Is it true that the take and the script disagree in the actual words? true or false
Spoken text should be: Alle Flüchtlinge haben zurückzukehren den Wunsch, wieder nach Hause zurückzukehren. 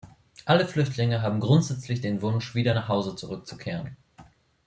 true